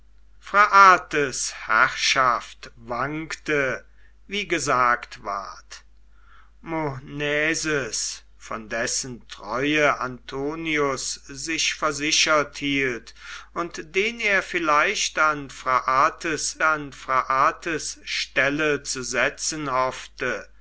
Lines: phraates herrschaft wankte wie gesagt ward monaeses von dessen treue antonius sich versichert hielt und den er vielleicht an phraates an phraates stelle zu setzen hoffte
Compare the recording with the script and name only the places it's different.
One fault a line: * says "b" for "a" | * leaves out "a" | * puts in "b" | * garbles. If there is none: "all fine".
all fine